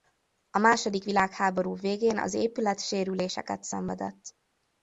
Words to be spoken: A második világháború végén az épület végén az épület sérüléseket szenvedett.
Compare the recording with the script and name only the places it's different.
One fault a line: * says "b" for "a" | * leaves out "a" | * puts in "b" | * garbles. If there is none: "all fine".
* leaves out "végén az épület"